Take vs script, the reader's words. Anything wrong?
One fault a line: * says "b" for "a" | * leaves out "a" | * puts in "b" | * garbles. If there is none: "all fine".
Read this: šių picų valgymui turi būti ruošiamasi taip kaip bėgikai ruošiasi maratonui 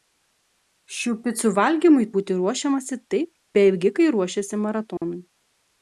* leaves out "turi"
* leaves out "kaip"